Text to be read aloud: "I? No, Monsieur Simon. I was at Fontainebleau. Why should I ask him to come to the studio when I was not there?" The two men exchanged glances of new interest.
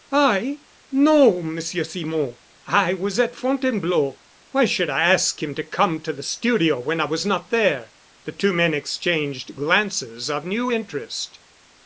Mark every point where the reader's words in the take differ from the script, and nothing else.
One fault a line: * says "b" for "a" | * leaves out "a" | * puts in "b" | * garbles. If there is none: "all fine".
all fine